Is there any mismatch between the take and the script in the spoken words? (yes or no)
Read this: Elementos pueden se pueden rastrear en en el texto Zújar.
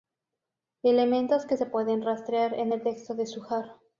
yes